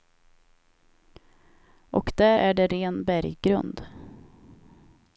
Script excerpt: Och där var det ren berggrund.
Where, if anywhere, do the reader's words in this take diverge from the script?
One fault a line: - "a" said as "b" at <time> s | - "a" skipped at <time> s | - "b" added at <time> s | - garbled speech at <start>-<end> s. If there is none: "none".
- "var" said as "är" at 2.3 s